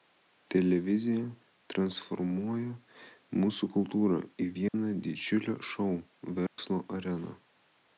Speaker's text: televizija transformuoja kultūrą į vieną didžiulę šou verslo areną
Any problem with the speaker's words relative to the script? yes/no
yes